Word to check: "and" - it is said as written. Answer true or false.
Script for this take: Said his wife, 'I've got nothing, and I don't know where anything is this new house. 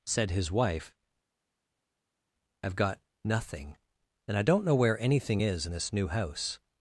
true